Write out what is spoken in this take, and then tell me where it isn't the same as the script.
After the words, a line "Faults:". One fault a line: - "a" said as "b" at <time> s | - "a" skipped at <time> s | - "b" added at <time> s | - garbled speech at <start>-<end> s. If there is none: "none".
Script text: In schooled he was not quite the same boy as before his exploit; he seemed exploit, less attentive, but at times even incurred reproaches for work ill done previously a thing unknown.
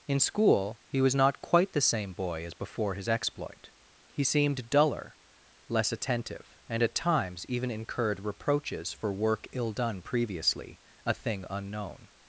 In school he was not quite the same boy as before his exploit; he seemed duller, less attentive, and at times even incurred reproaches for work ill done previously a thing unknown.
Faults:
- "schooled" said as "school" at 0.2 s
- "exploit" said as "duller" at 4.7 s
- "but" said as "and" at 6.7 s